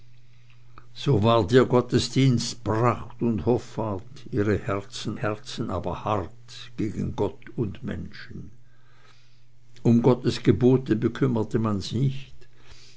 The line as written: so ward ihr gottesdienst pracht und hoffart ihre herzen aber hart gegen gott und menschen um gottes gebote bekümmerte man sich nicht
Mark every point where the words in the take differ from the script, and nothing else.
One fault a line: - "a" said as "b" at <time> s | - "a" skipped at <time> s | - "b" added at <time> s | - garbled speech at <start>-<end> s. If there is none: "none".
- "herzen" added at 5.1 s